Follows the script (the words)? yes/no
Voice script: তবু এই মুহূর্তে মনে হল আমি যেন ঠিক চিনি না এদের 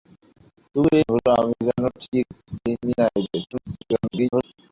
no